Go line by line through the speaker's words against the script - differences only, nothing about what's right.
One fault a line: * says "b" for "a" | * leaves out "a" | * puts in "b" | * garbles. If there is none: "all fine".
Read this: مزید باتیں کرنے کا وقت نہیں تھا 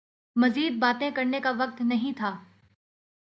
all fine